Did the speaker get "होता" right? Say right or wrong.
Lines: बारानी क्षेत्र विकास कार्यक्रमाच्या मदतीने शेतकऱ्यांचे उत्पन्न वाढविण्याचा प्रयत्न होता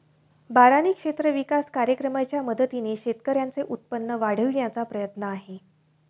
wrong